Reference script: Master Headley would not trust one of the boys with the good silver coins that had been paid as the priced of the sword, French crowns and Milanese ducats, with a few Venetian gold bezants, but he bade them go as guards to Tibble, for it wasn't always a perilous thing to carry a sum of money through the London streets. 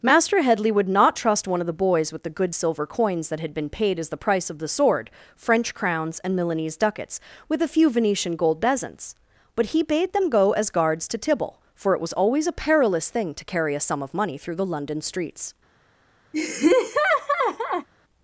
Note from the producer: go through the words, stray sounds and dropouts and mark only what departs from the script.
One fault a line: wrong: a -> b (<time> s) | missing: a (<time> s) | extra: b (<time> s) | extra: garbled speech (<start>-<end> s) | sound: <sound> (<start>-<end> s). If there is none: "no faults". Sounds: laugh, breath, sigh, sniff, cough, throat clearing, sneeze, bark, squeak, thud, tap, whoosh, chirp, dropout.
wrong: priced -> price (4.2 s)
wrong: wasn't -> was (12.0 s)
sound: laugh (16.3-17.9 s)